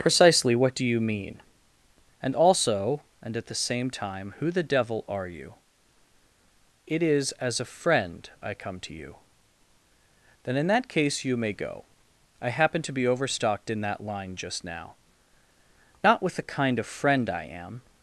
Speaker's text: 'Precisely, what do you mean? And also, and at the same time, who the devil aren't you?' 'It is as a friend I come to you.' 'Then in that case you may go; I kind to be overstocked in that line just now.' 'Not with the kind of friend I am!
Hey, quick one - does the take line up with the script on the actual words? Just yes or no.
no